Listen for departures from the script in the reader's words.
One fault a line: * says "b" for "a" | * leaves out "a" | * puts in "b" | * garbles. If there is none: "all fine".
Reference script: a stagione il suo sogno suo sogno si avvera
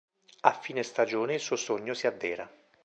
* puts in "fine"
* leaves out "suo sogno"